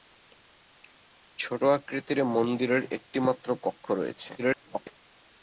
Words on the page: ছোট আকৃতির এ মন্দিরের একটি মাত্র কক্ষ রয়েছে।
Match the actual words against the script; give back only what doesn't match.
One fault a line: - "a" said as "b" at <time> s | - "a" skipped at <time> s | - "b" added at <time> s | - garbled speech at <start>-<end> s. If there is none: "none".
- garbled speech at 4.4-5.0 s